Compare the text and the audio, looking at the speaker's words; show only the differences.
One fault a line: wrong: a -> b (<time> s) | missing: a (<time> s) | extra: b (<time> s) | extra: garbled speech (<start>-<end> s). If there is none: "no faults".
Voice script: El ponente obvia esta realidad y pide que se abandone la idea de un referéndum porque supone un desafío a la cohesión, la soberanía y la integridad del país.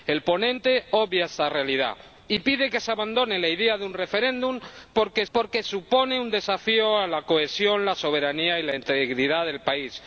extra: porque (5.3 s)